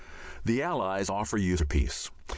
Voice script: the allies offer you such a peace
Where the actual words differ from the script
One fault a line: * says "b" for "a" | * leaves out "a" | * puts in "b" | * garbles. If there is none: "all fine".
* leaves out "such"